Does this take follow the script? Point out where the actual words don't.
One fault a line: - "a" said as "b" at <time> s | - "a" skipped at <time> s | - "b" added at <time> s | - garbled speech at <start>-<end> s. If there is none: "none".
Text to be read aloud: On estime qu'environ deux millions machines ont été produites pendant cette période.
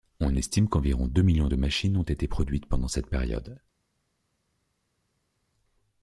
- "de" added at 1.5 s